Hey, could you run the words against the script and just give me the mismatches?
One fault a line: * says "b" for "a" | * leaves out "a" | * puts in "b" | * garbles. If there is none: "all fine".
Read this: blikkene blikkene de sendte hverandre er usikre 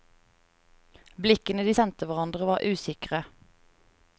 * leaves out "blikkene"
* says "var" for "er"